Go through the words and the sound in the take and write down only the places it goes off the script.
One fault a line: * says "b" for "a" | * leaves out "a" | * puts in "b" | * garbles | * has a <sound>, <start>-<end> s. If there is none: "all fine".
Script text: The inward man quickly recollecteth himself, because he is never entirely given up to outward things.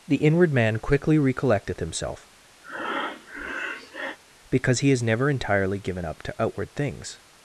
* has a breath, 2.6-4.2 s